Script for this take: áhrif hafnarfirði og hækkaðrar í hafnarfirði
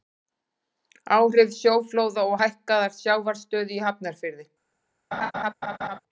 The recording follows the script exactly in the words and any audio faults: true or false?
false